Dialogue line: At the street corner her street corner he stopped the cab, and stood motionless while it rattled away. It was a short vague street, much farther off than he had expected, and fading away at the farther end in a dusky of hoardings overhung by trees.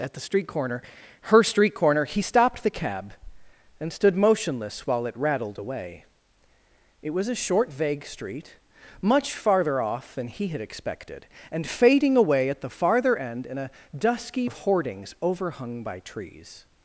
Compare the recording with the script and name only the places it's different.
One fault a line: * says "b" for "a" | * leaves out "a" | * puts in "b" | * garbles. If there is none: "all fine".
all fine